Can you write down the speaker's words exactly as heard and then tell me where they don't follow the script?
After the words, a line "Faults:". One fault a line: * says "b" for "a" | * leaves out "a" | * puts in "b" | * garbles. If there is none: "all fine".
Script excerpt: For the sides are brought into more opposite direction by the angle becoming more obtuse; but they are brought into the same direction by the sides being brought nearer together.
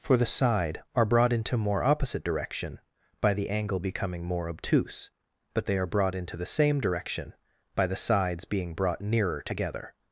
For the side are brought into more opposite direction by the angle becoming more obtuse; but they are brought into the same direction by the sides being brought nearer together.
Faults:
* says "side" for "sides"